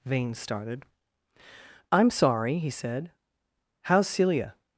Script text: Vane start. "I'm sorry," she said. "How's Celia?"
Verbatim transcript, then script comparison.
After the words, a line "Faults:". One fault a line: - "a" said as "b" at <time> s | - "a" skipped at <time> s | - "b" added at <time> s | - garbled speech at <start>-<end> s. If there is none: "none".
Vane started. "I'm sorry," he said. "How's Celia?"
Faults:
- "start" said as "started" at 0.3 s
- "she" said as "he" at 2.6 s